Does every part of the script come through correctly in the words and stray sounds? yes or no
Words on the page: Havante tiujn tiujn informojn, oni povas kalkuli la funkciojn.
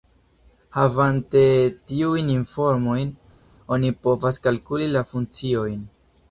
no